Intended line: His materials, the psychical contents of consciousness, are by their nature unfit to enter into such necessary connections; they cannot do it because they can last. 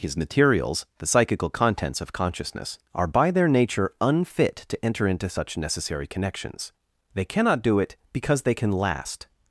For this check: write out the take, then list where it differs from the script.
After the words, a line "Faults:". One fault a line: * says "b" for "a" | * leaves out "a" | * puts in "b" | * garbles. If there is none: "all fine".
His materials, the psychical contents of consciousness, are by their nature unfit to enter into such necessary connections; they cannot do it because they can last.
Faults:
all fine